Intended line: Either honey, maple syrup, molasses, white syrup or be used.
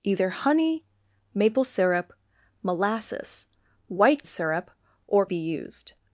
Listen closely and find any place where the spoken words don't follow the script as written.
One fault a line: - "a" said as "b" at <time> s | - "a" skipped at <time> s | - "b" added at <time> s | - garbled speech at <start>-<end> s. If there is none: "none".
none